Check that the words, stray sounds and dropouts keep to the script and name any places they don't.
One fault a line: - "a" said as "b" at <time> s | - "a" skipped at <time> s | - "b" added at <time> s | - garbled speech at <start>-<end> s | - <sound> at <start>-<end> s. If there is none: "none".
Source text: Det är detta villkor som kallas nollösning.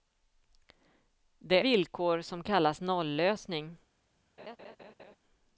- "är detta" skipped at 1.6 s
- laugh at 4.4-5.2 s